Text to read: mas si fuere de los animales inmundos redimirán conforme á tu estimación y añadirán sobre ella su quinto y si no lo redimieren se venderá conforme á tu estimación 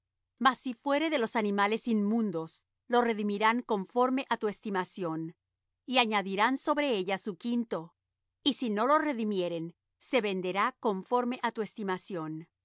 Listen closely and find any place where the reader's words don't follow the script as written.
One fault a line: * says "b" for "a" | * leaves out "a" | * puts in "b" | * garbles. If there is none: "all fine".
* puts in "lo"